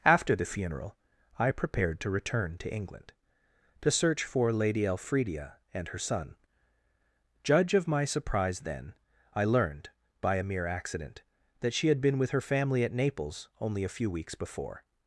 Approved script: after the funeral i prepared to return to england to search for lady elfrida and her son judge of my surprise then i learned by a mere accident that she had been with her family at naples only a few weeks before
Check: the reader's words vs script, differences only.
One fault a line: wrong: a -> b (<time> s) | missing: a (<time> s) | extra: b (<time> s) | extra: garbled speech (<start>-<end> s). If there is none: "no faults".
no faults